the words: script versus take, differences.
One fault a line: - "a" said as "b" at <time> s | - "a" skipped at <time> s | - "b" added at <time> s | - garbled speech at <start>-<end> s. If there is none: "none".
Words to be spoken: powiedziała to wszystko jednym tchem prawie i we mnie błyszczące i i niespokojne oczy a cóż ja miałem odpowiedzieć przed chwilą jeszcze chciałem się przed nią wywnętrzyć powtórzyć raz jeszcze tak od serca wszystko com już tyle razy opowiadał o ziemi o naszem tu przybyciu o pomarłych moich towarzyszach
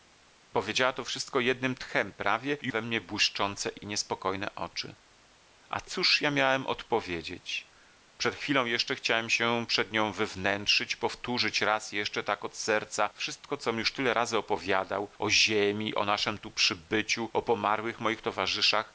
none